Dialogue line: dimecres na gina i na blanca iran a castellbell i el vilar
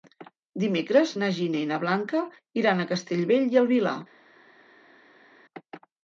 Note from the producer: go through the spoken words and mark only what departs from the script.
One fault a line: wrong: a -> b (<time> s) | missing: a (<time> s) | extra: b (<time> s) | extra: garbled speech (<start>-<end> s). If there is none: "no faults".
no faults